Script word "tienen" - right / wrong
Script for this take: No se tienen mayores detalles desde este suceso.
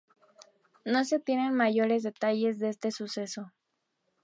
right